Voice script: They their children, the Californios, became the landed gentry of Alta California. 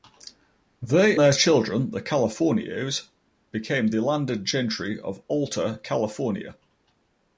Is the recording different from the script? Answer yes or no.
no